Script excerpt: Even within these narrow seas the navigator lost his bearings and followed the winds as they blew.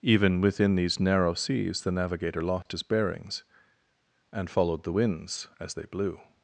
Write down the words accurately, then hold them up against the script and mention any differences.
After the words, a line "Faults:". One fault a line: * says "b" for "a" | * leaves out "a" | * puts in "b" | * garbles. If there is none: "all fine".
Even within these narrow seas the navigator lost his bearings and followed the winds as they blew.
Faults:
all fine